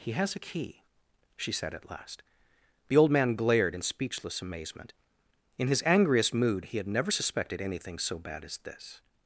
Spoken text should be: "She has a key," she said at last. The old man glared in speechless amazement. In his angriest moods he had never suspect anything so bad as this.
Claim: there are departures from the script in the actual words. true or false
true